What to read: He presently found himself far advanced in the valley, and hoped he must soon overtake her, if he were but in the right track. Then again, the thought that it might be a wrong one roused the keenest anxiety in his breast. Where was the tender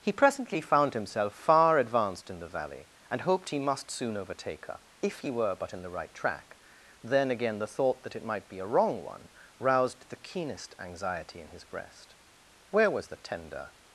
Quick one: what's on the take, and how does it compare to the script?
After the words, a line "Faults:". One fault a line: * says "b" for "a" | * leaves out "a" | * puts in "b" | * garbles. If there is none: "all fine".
He presently found himself far advanced in the valley, and hoped he must soon overtake her, if he were but in the right track. Then again, the thought that it might be a wrong one roused the keenest anxiety in his breast. Where was the tender
Faults:
all fine